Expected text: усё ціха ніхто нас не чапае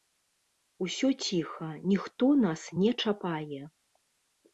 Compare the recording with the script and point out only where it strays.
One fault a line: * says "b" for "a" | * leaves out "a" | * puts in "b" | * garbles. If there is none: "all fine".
all fine